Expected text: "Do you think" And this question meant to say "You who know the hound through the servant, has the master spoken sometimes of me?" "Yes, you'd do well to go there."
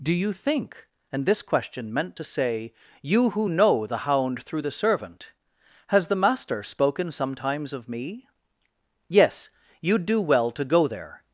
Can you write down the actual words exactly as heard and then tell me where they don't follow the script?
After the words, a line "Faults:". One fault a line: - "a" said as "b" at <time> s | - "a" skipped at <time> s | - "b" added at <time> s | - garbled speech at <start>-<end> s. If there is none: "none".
"Do you think" And this question meant to say "You who know the hound through the servant, has the master spoken sometimes of me?" "Yes, you'd do well to go there."
Faults:
none